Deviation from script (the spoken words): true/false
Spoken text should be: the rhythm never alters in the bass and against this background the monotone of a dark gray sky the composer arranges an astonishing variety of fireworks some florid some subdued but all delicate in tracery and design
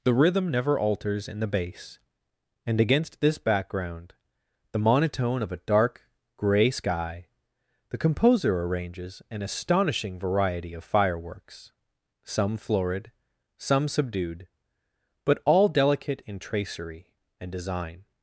false